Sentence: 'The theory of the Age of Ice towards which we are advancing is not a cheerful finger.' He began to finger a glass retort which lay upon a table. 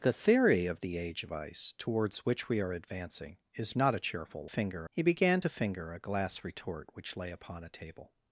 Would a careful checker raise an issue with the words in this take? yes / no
no